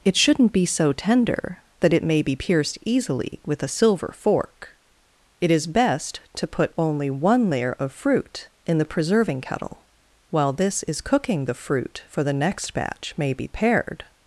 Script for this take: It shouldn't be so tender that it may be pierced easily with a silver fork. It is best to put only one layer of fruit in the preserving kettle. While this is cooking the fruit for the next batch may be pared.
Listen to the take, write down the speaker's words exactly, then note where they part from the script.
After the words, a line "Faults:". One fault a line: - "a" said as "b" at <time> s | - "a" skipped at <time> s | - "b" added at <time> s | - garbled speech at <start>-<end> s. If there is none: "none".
It shouldn't be so tender that it may be pierced easily with a silver fork. It is best to put only one layer of fruit in the preserving kettle. While this is cooking the fruit for the next batch may be pared.
Faults:
none